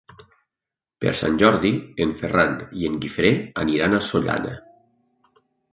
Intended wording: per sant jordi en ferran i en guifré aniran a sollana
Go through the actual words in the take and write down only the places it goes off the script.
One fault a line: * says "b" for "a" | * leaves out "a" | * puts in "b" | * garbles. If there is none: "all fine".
all fine